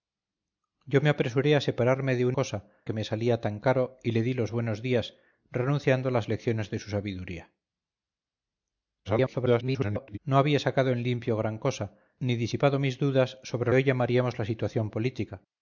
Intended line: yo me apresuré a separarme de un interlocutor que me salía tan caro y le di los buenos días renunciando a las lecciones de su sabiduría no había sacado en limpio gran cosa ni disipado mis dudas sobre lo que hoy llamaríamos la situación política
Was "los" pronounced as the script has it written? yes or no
yes